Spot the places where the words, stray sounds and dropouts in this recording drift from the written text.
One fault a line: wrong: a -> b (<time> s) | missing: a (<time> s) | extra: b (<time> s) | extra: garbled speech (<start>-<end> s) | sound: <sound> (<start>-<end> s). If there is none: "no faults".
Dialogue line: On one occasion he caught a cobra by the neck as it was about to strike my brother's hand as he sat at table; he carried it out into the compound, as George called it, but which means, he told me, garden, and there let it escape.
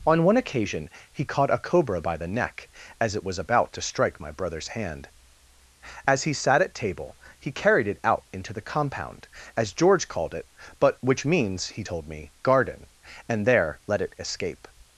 no faults